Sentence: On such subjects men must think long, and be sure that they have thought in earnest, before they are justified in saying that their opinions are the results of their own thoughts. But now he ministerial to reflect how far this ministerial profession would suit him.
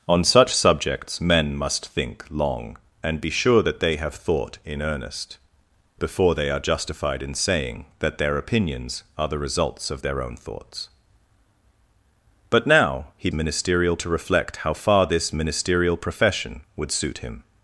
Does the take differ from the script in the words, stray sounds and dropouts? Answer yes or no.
no